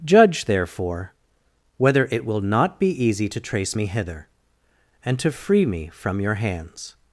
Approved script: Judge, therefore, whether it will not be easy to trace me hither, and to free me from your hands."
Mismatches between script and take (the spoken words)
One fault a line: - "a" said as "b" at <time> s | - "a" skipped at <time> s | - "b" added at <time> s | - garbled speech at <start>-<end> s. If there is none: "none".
none